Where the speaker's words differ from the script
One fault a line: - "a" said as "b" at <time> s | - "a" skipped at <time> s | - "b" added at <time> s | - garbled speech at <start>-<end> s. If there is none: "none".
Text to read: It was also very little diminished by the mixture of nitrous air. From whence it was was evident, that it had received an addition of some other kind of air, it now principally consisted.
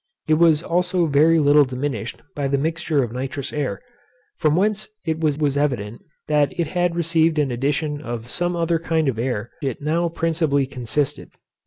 none